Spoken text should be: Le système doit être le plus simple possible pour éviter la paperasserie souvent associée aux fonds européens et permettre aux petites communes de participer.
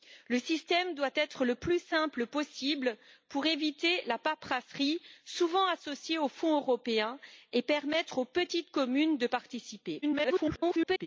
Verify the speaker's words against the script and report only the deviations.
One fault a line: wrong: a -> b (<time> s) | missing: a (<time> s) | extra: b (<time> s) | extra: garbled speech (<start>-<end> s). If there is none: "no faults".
extra: garbled speech (10.0-11.1 s)